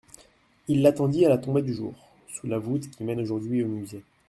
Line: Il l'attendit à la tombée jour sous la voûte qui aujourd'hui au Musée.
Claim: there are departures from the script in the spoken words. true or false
true